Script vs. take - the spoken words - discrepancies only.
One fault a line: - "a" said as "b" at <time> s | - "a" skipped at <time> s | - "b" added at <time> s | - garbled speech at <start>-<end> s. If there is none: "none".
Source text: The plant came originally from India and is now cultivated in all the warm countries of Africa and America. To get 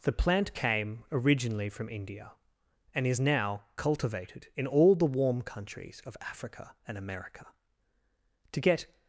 none